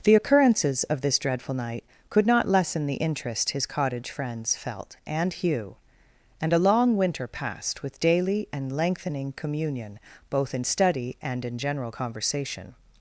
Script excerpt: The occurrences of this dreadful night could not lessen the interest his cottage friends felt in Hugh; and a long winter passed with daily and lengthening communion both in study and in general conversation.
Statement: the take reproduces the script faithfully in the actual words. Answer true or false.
false